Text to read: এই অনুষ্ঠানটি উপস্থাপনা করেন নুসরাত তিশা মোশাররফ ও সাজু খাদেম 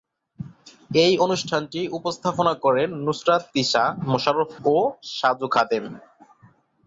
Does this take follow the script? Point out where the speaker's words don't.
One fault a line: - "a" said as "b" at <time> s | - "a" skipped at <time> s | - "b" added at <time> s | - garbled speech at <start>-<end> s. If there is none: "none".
none